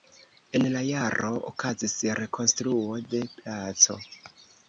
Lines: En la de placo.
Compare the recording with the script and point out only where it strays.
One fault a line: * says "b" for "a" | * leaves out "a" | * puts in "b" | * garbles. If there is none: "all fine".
* puts in "jaro okazis rekonstruo"